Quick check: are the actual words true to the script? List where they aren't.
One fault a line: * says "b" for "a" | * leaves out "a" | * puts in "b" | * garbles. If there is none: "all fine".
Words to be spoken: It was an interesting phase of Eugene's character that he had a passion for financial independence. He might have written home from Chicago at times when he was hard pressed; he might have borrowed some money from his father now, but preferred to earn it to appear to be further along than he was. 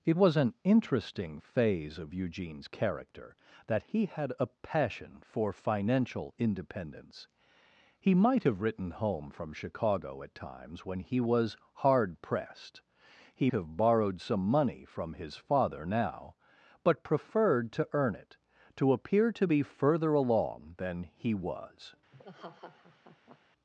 * leaves out "might"